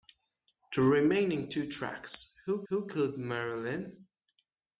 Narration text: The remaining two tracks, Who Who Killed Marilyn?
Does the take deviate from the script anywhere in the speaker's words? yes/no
no